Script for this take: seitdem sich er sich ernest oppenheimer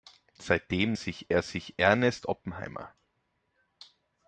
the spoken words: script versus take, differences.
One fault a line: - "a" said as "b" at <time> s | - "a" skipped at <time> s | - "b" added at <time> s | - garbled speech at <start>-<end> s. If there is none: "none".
none